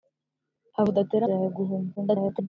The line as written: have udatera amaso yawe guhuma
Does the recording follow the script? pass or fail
fail